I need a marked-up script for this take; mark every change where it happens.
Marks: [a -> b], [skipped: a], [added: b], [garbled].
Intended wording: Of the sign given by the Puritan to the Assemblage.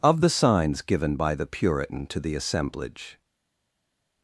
Of the [sign -> signs] given by the Puritan to the Assemblage.